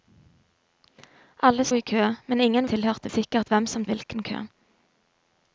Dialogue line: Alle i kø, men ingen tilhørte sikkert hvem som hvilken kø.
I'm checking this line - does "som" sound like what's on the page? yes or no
yes